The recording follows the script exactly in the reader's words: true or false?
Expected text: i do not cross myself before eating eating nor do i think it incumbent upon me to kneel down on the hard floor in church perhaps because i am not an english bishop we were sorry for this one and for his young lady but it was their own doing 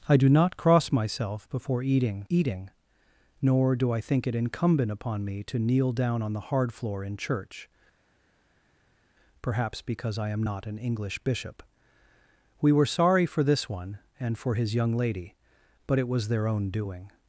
true